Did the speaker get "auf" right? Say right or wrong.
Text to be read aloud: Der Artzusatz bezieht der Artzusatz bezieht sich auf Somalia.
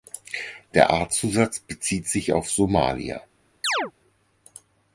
right